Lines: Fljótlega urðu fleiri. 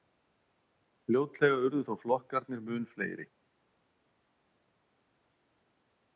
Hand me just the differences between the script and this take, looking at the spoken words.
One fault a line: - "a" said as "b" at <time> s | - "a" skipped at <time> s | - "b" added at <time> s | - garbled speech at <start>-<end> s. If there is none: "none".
- "þó flokkarnir mun" added at 1.9 s